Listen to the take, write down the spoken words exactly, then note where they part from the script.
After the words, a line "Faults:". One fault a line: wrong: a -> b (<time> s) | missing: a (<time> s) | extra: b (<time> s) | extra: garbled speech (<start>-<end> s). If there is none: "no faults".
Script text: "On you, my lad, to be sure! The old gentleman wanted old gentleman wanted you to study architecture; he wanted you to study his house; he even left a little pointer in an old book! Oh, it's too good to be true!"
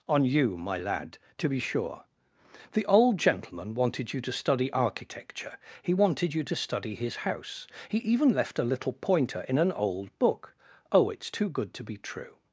"On you, my lad, to be sure! The old gentleman wanted you to study architecture; he wanted you to study his house; he even left a little pointer in an old book! Oh, it's too good to be true!"
Faults:
missing: old gentleman wanted (4.1 s)